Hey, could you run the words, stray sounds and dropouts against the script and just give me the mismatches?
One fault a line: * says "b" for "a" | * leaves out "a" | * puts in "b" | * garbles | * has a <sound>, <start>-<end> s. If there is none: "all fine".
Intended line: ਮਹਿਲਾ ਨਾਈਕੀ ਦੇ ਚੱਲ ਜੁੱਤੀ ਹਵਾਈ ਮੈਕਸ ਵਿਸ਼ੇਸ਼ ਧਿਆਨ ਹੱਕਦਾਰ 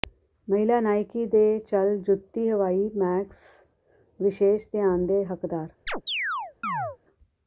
* puts in "ਦੇ"
* has a chirp, 5.9-7.0 s